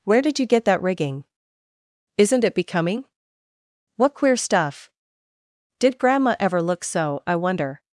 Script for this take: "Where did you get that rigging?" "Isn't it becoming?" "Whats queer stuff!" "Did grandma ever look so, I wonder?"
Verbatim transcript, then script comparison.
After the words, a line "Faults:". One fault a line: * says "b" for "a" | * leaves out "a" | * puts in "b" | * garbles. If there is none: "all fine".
"Where did you get that rigging?" "Isn't it becoming?" "What queer stuff!" "Did grandma ever look so, I wonder?"
Faults:
* says "What" for "Whats"